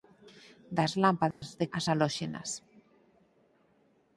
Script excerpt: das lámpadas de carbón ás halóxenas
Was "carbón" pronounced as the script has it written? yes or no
no